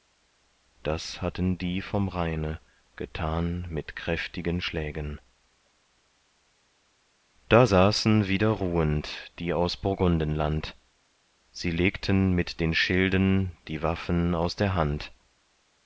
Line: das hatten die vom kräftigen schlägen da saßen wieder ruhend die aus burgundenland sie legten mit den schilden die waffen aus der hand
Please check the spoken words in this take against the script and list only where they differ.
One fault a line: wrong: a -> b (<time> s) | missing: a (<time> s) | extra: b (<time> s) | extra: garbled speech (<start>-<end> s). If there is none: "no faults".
extra: rheine getan mit (2.1 s)